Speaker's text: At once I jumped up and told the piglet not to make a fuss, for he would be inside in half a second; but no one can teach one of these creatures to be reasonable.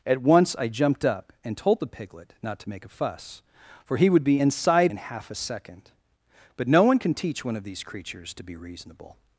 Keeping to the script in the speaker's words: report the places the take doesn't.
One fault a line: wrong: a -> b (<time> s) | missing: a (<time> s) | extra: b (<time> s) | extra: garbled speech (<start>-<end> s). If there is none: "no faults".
no faults